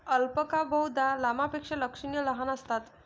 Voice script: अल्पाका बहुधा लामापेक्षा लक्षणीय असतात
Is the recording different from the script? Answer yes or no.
yes